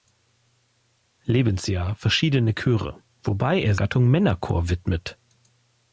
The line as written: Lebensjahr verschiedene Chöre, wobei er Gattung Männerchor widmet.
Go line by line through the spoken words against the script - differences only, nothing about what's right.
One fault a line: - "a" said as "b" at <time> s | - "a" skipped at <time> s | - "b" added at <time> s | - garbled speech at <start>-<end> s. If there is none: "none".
none